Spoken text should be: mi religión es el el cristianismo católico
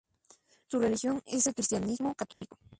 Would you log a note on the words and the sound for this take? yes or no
yes